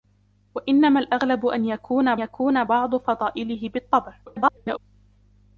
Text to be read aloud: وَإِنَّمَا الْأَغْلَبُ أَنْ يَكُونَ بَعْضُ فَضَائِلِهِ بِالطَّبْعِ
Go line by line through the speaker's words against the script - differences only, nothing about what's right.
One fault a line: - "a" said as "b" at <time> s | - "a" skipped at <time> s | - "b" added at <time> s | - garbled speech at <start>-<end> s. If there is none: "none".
- "يَكُونَ" added at 2.2 s
- garbled speech at 4.3-4.8 s